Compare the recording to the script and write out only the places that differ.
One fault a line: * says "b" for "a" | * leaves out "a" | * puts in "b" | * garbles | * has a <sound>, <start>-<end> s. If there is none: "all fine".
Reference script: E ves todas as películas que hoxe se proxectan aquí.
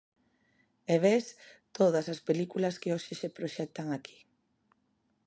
all fine